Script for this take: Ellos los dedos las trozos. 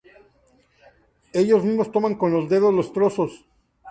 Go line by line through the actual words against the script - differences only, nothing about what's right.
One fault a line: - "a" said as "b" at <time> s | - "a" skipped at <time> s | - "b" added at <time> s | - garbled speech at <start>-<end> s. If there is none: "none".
- "mismos toman con" added at 1.6 s
- "las" said as "los" at 2.7 s